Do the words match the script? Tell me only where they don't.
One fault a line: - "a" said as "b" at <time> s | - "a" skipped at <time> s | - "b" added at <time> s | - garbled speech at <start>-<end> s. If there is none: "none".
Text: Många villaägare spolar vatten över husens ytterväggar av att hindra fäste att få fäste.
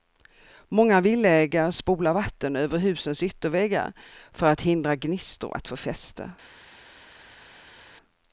- "av" said as "för" at 4.3 s
- "fäste" said as "gnistor" at 5.0 s